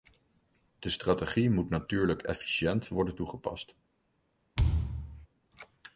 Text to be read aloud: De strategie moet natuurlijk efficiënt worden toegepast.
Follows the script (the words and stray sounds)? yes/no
no